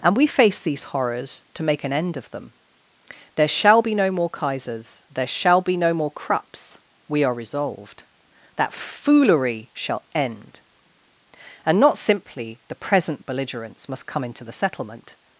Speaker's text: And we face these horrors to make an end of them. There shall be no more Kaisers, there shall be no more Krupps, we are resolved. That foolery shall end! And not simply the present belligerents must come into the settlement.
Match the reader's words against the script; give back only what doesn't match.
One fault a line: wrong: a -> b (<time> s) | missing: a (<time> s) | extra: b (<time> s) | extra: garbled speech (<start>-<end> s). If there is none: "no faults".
no faults